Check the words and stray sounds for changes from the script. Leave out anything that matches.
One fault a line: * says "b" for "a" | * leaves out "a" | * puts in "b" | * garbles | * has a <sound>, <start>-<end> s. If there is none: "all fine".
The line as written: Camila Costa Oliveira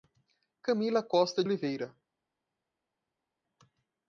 all fine